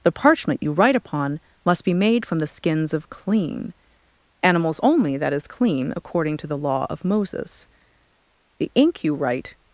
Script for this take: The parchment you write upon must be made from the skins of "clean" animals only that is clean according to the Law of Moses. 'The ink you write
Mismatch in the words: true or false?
false